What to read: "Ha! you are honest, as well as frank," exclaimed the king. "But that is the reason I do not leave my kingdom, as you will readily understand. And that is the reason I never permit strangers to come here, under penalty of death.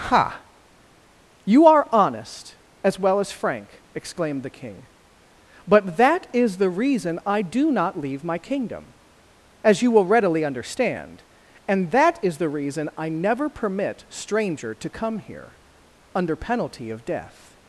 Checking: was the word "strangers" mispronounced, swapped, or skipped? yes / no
yes